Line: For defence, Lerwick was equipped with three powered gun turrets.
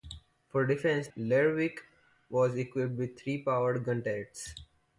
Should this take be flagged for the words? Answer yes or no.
no